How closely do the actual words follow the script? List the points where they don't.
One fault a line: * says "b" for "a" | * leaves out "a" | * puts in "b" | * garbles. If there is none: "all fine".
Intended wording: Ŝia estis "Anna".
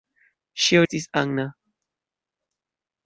all fine